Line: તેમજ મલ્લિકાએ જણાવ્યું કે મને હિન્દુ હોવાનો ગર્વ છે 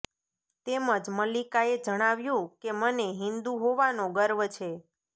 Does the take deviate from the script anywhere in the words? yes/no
no